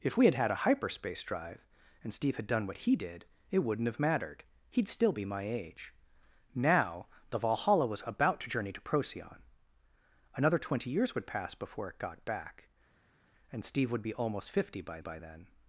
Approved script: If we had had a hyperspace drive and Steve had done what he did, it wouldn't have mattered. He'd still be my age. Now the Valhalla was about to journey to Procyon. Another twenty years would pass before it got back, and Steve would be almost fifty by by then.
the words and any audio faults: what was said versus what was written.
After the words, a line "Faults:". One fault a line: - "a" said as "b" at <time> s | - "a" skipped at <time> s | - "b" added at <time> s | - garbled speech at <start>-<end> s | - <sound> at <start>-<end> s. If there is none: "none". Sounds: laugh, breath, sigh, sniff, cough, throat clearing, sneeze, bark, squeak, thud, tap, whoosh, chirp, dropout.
If we had had a hyperspace drive and Steve had done what he did, it wouldn't have mattered. He'd still be my age. Now the Valhalla was about to journey to Procyon. Another twenty years would pass before it got back, and Steve would be almost fifty by by then.
Faults:
none